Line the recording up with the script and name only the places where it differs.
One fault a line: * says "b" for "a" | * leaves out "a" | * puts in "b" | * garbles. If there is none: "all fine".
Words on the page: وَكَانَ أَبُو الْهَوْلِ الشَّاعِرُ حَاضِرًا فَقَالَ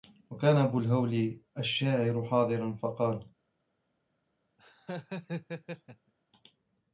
all fine